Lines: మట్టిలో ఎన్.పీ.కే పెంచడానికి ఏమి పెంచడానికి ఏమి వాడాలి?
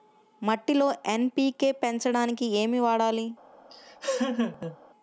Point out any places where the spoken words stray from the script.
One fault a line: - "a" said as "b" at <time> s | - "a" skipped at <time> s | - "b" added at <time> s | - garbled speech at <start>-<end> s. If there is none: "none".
- "పెంచడానికి ఏమి" skipped at 2.8 s